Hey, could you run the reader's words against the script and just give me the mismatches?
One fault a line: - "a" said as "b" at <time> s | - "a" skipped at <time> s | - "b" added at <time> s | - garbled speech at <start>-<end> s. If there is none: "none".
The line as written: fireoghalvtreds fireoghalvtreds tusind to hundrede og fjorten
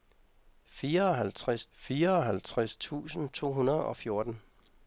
none